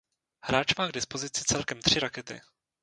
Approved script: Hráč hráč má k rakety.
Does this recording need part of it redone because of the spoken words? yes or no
yes